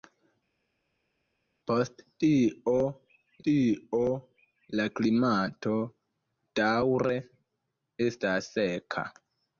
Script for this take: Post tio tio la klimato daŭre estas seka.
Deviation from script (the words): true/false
false